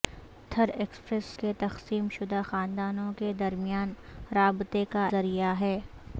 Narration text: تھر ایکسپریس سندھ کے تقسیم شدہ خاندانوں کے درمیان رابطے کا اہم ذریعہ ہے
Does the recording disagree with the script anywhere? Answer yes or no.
yes